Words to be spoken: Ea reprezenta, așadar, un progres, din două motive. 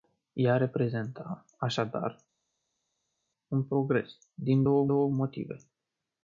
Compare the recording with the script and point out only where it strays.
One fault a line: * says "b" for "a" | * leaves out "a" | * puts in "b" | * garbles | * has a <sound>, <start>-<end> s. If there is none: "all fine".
* puts in "două"